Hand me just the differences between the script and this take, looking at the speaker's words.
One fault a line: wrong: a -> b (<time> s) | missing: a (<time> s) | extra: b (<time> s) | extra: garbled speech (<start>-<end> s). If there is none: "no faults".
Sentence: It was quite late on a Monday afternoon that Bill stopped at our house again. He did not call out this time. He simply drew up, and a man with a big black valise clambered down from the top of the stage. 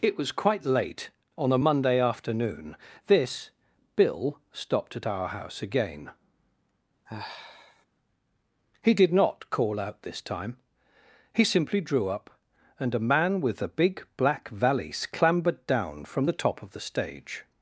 wrong: that -> this (3.1 s)